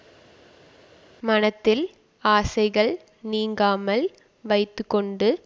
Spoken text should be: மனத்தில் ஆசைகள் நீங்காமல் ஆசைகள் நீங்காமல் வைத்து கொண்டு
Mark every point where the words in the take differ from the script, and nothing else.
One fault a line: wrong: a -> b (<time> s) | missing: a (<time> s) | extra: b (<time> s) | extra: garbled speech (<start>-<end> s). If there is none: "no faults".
missing: ஆசைகள் நீங்காமல் (4.0 s)